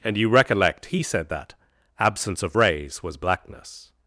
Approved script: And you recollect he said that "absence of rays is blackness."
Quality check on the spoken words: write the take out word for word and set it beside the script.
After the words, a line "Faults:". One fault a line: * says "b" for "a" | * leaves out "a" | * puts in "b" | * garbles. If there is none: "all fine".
And you recollect he said that "absence of rays was blackness."
Faults:
* says "was" for "is"